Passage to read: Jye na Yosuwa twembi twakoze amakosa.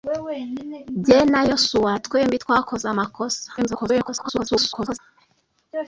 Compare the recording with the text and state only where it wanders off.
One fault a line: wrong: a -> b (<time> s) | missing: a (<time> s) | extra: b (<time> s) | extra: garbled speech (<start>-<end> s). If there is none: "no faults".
extra: garbled speech (3.6-5.0 s)